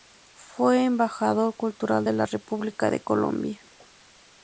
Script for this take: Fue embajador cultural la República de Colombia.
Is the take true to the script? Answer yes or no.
no